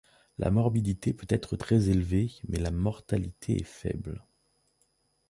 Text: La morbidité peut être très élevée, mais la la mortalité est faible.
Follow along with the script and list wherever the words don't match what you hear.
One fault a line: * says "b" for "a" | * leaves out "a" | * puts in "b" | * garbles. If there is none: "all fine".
* leaves out "la"